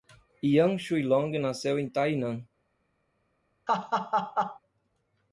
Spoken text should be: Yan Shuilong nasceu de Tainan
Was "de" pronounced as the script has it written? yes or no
no